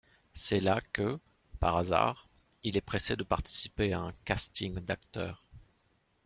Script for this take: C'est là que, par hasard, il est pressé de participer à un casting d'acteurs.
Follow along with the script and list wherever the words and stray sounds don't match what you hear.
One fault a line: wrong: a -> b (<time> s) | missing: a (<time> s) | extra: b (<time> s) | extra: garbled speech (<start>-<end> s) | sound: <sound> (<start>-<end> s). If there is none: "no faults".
no faults